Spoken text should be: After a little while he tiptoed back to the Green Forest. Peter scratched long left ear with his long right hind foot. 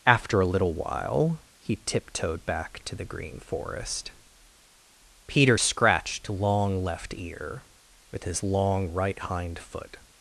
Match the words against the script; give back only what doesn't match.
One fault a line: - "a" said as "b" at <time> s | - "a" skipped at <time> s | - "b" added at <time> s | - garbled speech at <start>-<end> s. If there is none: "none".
none